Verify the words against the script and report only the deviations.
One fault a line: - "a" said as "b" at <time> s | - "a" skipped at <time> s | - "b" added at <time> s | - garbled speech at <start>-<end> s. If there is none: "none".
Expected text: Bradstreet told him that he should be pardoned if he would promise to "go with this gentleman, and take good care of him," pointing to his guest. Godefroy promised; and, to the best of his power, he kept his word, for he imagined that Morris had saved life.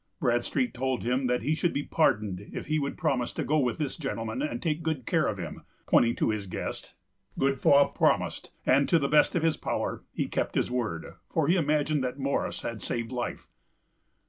none